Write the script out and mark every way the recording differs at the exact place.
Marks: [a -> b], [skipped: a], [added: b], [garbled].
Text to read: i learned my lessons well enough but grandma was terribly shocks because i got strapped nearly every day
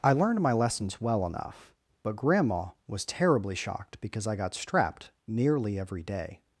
i learned my lessons well enough but grandma was terribly [shocks -> shocked] because i got strapped nearly every day